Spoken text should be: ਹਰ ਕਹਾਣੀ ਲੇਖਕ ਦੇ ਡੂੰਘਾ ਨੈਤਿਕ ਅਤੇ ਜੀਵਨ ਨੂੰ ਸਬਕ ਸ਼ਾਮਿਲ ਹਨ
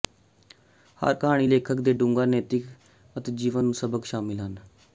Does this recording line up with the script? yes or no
yes